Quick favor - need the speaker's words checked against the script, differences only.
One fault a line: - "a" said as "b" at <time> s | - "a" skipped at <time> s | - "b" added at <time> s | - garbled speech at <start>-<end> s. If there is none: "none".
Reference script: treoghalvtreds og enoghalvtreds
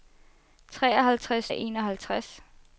none